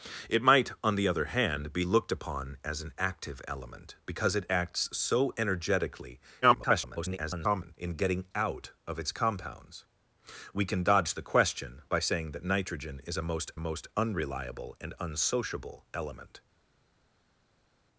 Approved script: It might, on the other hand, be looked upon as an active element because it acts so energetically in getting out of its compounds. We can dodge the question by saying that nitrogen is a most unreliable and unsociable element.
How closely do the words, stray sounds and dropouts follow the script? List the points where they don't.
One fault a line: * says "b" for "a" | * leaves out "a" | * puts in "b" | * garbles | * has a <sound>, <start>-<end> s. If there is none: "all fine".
* garbles
* puts in "most"